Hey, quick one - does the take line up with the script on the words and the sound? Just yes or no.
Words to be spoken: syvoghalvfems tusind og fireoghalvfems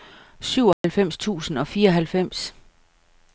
no